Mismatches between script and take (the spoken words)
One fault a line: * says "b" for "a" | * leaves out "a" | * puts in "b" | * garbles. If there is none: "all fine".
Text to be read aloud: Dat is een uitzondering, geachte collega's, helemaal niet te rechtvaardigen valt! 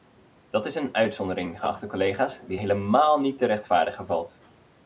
* puts in "die"